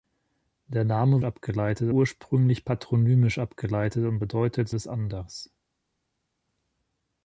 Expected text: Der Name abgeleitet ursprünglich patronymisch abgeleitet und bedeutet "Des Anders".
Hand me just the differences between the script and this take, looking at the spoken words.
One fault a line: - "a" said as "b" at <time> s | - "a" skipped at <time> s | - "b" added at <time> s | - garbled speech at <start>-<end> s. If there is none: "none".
none